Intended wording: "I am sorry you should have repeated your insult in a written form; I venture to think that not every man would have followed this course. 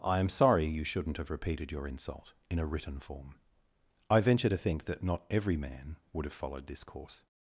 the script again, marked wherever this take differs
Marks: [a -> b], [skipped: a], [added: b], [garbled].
"I am sorry you [should -> shouldn't] have repeated your insult in a written form; I venture to think that not every man would have followed this course.